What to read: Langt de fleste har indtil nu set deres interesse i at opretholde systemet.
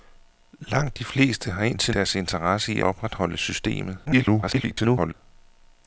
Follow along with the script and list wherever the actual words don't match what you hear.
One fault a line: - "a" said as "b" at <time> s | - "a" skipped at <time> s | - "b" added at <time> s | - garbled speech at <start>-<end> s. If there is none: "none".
- "nu set" skipped at 1.9 s
- "at" skipped at 2.8 s
- garbled speech at 4.1-5.1 s